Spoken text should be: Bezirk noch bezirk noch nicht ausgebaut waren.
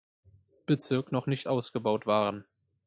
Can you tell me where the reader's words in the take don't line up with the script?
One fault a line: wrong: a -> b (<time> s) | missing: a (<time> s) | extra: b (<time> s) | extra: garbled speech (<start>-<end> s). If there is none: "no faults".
missing: bezirk noch (1.3 s)